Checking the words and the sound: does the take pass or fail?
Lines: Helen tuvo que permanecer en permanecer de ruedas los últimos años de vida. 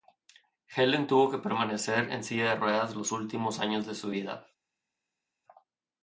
fail